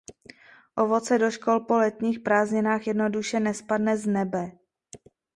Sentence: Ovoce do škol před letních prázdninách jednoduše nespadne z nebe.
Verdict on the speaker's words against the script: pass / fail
fail